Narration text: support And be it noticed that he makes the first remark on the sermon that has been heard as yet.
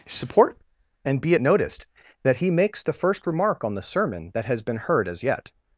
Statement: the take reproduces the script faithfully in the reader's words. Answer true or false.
true